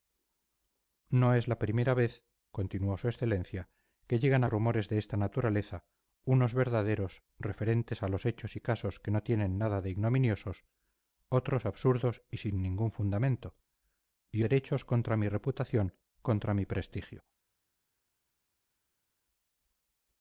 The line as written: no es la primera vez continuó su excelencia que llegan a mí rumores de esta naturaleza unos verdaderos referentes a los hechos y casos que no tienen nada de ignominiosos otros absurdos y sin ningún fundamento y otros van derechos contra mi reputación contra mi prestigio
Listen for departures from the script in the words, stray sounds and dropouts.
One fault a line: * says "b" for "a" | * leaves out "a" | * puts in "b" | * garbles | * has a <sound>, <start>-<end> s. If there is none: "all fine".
* leaves out "mí"
* leaves out "otros van"